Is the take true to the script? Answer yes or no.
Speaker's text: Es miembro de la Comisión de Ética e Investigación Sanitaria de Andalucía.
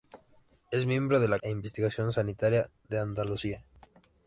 no